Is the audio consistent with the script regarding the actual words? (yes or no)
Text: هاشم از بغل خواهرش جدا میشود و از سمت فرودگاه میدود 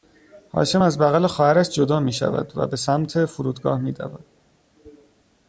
no